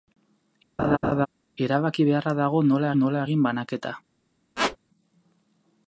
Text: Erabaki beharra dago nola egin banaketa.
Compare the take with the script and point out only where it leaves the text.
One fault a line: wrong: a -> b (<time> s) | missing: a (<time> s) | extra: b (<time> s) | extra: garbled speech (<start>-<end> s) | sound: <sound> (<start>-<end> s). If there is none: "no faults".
sound: laugh (0.8-1.3 s)
extra: nola (3.0 s)
sound: squeak (4.6-4.8 s)